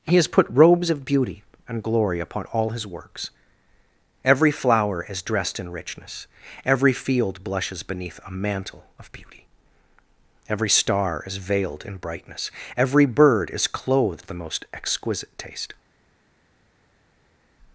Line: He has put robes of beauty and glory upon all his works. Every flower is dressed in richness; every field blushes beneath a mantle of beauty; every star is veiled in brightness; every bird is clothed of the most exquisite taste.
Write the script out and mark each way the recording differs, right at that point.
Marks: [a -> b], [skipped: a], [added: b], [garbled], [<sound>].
He has put robes of beauty and glory upon all his works. Every flower is dressed in richness; every field blushes beneath a mantle of beauty; every star is veiled in brightness; every bird is clothed of the most exquisite taste.